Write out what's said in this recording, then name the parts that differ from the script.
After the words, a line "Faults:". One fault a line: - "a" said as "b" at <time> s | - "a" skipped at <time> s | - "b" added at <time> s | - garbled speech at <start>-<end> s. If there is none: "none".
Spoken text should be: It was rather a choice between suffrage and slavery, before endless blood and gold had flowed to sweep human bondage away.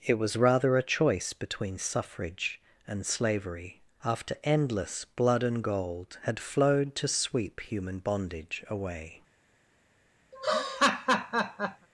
It was rather a choice between suffrage and slavery, after endless blood and gold had flowed to sweep human bondage away.
Faults:
- "before" said as "after" at 4.0 s